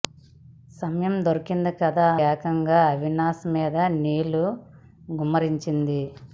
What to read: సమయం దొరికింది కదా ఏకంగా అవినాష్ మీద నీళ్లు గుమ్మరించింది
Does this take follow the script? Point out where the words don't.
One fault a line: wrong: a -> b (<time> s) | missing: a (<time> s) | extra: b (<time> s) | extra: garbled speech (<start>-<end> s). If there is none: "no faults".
no faults